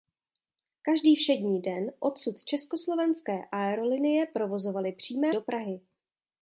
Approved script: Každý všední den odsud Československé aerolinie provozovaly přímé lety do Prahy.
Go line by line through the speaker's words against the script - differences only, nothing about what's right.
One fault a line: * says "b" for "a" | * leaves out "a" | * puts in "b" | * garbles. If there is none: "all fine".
* leaves out "lety"